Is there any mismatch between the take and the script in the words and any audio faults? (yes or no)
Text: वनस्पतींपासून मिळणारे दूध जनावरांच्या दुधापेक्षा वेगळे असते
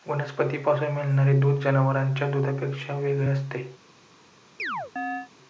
yes